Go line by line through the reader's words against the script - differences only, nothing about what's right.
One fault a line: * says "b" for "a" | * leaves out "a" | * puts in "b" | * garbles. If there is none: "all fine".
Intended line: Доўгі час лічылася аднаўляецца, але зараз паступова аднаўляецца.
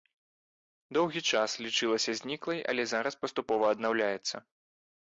* says "зніклай" for "аднаўляецца"